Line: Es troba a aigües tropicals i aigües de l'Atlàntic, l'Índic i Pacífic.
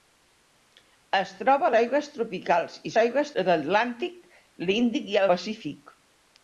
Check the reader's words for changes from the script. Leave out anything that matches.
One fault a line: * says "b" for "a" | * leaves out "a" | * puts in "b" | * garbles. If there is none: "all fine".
all fine